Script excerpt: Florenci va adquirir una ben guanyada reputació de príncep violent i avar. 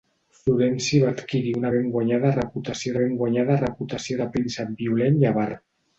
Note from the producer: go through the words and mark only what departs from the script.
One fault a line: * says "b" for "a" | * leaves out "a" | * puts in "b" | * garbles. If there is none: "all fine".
* puts in "ben guanyada reputació"